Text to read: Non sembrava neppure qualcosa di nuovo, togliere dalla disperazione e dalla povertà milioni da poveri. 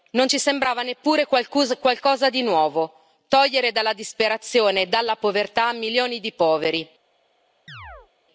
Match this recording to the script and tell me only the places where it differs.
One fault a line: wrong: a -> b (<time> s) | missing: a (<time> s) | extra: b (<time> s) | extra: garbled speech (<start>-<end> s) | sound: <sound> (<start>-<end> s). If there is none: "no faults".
extra: ci (0.3 s)
wrong: da -> di (6.2 s)
sound: chirp (7.7-8.1 s)